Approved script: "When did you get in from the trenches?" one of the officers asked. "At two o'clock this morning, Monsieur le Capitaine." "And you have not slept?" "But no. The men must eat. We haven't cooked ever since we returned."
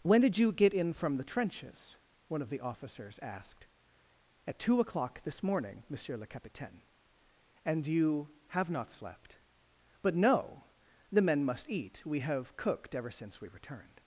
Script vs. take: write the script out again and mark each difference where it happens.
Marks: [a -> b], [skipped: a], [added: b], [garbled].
"When did you get in from the trenches?" one of the officers asked. "At two o'clock this morning, Monsieur le Capitaine." "And you have not slept?" "But no. The men must eat. We [haven't -> have] cooked ever since we returned."